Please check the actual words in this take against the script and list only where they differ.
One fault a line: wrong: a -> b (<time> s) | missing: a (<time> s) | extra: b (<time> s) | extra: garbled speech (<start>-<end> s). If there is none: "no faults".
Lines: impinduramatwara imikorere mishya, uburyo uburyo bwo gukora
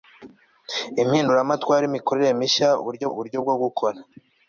no faults